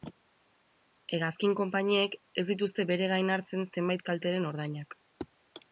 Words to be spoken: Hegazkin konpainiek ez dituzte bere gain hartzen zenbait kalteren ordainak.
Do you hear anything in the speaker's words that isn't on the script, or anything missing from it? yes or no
no